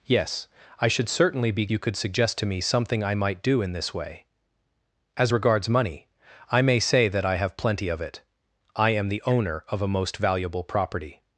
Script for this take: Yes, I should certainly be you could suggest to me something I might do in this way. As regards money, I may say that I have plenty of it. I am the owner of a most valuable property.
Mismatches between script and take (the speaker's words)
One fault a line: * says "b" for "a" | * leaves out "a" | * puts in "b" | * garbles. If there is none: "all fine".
all fine